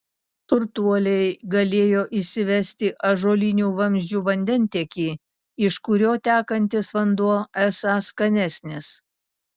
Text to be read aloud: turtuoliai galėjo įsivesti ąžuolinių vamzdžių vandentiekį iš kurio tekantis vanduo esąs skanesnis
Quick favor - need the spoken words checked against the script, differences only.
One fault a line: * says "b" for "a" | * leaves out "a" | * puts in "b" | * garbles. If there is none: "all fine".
all fine